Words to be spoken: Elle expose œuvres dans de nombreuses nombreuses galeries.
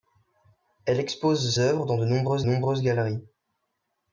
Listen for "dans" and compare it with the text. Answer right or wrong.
right